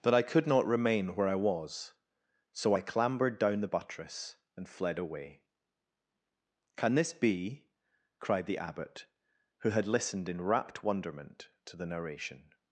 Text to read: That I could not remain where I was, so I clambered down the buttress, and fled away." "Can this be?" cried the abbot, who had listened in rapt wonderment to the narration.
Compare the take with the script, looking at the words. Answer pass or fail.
pass